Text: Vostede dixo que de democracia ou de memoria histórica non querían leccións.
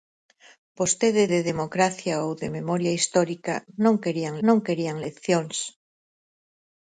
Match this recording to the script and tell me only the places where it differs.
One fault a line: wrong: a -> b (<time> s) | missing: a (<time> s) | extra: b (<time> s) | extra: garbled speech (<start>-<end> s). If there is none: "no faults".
missing: dixo que (1.2 s)
extra: non querían (4.5 s)